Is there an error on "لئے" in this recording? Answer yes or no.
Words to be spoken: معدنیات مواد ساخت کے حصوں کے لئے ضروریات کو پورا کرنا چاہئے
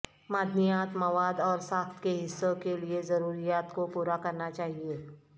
no